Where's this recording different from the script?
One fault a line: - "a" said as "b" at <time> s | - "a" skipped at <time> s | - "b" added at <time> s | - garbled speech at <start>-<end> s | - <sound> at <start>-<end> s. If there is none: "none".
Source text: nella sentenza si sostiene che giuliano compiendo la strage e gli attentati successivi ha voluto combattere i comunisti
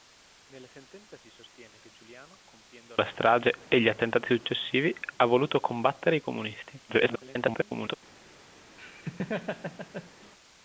- garbled speech at 6.9-7.9 s
- laugh at 8.8-10.3 s